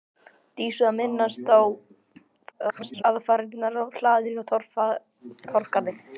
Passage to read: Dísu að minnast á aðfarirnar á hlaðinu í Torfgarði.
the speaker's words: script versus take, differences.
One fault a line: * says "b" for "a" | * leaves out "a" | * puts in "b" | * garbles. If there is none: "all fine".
* garbles